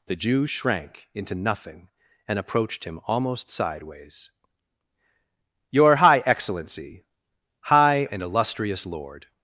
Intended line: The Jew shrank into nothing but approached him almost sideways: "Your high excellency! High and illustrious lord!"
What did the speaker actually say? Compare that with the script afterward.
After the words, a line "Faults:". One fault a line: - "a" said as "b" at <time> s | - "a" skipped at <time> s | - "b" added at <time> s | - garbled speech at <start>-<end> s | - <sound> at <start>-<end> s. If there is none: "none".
The Jew shrank into nothing and approached him almost sideways: "Your high excellency! High and illustrious lord!"
Faults:
- "but" said as "and" at 2.3 s